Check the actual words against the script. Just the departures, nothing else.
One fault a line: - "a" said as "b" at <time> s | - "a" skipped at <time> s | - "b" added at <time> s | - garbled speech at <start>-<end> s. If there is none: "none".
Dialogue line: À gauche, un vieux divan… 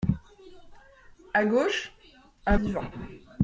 - "vieux" skipped at 2.6 s